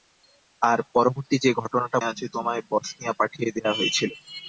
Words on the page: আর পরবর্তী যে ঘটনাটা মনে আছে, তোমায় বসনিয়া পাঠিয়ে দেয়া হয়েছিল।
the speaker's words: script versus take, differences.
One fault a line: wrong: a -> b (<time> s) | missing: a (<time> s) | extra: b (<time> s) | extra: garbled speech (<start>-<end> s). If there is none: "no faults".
missing: মনে (2.0 s)